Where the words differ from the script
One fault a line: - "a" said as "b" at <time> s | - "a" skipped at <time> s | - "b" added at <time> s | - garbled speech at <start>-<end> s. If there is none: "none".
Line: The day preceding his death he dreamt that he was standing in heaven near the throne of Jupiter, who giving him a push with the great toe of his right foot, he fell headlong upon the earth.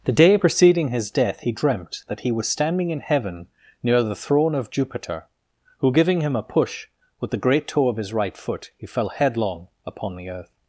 none